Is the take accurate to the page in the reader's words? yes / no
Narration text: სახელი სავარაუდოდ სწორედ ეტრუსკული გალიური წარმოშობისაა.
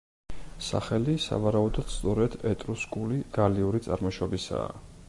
yes